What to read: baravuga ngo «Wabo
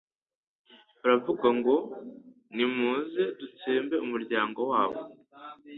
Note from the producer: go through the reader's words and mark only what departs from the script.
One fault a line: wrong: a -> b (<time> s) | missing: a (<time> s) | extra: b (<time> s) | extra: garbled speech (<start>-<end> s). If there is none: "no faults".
extra: Nimuze dutsembe umuryango (2.6 s)